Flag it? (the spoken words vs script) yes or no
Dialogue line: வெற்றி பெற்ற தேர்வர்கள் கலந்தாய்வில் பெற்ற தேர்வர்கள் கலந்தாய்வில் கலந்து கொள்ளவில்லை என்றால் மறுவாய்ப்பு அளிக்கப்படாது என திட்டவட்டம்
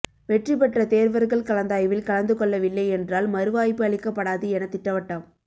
yes